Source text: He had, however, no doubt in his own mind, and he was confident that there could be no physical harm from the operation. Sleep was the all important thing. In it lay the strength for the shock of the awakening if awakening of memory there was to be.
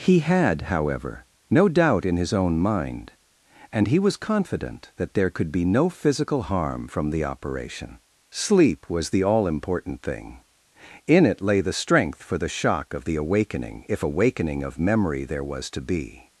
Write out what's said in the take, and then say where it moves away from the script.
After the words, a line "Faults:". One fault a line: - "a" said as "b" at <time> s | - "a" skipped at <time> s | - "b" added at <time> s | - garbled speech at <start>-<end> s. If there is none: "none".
He had, however, no doubt in his own mind, and he was confident that there could be no physical harm from the operation. Sleep was the all important thing. In it lay the strength for the shock of the awakening if awakening of memory there was to be.
Faults:
none